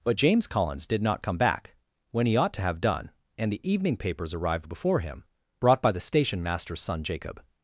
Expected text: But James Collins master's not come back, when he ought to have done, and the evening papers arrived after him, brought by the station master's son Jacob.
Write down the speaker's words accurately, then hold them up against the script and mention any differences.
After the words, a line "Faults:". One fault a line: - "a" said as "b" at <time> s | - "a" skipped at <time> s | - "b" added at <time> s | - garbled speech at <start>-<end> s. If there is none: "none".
But James Collins did not come back, when he ought to have done, and the evening papers arrived before him, brought by the station master's son Jacob.
Faults:
- "master's" said as "did" at 0.9 s
- "after" said as "before" at 4.7 s